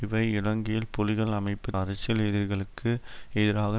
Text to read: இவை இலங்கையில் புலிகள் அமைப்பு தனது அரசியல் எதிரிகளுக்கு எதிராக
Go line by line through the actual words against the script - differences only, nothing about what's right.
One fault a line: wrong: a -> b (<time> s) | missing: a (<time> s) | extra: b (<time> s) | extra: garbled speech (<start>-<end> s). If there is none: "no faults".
missing: தனது (1.7 s)